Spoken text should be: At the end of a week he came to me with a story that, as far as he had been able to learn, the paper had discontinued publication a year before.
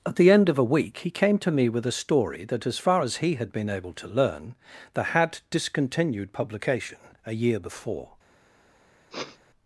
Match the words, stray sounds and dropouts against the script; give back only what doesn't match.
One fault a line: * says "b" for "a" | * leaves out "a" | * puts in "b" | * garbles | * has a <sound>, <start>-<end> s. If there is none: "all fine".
* leaves out "paper"
* has a sniff, 9.1-9.4 s